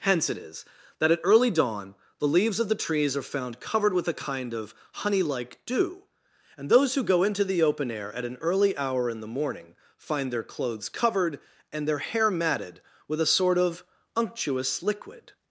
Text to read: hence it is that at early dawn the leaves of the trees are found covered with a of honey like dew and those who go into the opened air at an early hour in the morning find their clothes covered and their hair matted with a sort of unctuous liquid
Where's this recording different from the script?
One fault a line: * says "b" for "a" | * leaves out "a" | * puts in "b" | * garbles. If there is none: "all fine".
* puts in "kind"
* says "open" for "opened"